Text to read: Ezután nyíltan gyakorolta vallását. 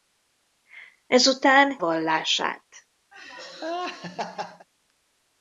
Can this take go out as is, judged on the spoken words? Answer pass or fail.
fail